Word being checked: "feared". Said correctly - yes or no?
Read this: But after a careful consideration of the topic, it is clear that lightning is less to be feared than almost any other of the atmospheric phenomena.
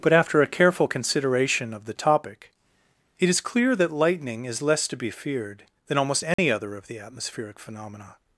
yes